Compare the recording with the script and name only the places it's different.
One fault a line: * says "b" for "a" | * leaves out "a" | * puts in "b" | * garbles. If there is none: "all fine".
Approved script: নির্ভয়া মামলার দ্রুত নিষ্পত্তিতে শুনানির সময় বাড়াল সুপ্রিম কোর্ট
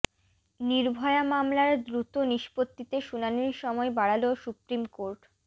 all fine